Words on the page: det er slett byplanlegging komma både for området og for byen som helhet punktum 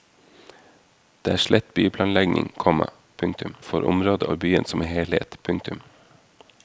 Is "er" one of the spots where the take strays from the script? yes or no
no